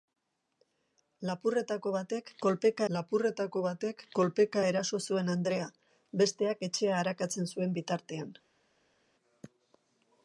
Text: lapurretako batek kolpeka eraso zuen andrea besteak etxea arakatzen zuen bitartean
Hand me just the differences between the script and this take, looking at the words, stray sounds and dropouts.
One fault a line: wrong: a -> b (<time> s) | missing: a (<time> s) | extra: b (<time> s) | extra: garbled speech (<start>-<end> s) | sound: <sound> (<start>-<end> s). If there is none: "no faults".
extra: lapurretako batek kolpeka (3.0 s)